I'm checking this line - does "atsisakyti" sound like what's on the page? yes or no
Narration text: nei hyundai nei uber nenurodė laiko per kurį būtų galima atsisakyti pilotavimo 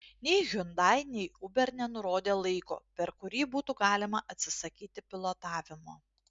yes